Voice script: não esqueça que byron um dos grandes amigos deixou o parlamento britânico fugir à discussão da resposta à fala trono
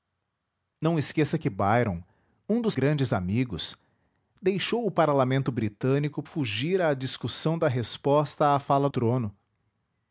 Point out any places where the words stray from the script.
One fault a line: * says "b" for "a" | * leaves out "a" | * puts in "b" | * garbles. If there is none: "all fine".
all fine